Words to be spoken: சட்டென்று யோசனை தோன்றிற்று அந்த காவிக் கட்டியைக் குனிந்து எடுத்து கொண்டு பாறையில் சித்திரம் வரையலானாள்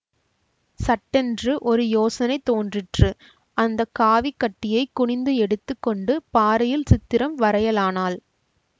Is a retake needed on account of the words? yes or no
yes